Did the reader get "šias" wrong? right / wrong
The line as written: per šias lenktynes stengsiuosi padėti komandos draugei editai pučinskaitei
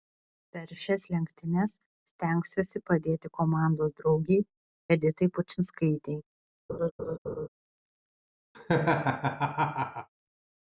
right